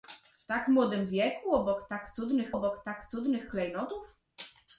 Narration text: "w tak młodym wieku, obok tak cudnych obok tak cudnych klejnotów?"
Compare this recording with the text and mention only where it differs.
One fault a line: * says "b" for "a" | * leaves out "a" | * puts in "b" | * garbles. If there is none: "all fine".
all fine